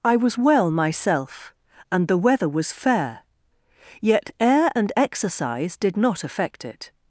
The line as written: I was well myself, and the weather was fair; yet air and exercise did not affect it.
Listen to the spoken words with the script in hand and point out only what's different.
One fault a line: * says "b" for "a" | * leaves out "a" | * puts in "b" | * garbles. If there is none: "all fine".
all fine